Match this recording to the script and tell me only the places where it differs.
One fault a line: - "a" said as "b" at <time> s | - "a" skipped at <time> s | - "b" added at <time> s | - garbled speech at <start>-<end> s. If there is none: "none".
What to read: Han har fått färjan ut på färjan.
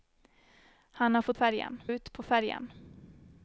none